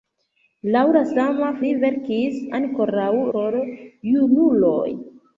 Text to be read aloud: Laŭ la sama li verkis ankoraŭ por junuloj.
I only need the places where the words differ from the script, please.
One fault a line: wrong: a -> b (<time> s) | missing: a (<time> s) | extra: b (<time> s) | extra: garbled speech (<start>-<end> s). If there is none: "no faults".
no faults